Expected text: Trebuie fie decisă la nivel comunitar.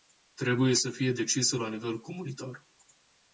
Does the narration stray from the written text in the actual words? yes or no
yes